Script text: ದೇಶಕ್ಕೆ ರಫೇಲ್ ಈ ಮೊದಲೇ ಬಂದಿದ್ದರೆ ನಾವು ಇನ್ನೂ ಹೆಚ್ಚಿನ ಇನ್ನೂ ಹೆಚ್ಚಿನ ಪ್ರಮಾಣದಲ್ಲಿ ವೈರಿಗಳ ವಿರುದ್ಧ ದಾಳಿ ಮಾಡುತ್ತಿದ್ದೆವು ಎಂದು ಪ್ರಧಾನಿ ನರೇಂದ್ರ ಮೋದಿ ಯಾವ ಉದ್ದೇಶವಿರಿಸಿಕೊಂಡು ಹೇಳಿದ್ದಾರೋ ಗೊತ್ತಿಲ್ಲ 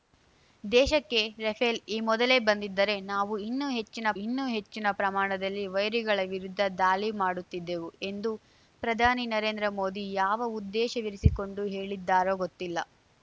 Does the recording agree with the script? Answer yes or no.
yes